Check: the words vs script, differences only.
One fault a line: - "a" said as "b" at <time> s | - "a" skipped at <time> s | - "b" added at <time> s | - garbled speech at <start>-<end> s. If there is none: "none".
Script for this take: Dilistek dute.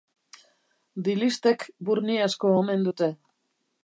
- "burni asko omen" added at 1.9 s